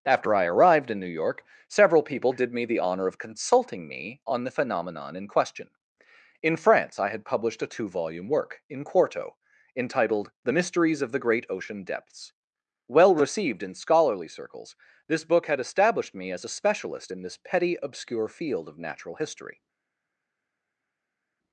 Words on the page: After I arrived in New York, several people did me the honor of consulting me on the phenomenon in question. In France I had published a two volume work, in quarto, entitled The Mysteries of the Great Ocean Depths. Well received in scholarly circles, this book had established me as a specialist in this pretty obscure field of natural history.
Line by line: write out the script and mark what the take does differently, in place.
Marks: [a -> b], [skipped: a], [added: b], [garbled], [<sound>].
After I arrived in New York, several people did me the honor of consulting me on the phenomenon in question. In France I had published a two volume work, in quarto, entitled The Mysteries of the Great Ocean Depths. Well received in scholarly circles, this book had established me as a specialist in this [pretty -> petty] obscure field of natural history.